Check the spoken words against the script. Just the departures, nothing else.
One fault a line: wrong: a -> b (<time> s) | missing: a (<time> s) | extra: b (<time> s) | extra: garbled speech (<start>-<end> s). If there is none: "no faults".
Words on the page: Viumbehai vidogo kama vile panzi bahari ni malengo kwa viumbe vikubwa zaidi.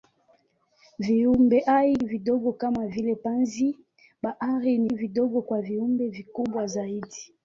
wrong: malengo -> vidogo (4.8 s)